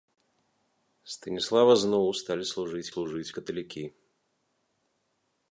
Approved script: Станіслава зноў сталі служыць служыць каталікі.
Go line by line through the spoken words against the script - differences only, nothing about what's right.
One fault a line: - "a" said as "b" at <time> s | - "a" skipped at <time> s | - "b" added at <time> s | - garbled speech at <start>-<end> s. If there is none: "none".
none